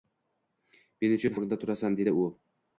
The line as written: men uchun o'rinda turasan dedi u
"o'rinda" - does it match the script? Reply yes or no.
yes